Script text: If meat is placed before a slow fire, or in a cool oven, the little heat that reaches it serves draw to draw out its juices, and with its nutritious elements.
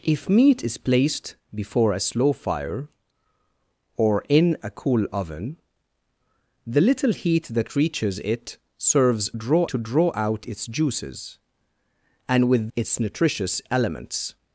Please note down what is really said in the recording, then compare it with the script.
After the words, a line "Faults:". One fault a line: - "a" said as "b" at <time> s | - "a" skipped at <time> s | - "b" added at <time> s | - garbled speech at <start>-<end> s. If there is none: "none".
If meat is placed before a slow fire, or in a cool oven, the little heat that reaches it serves draw to draw out its juices, and with its nutritious elements.
Faults:
none